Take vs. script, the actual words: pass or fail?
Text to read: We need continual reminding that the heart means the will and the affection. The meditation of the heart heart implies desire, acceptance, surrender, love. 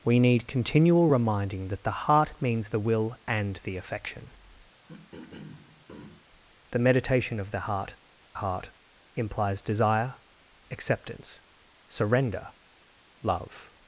pass